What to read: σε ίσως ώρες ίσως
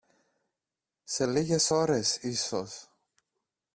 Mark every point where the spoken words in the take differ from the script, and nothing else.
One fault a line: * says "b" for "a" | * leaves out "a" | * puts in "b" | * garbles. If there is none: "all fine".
* says "λίγες" for "ίσως"